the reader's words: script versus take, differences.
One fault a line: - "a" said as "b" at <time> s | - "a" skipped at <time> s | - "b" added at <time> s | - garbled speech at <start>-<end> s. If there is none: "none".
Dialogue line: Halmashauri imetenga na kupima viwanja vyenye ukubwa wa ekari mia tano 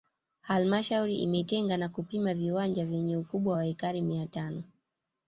none